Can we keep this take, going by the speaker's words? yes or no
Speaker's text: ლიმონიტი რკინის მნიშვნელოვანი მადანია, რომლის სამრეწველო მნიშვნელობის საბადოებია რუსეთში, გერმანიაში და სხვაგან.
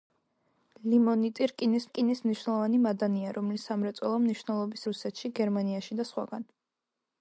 no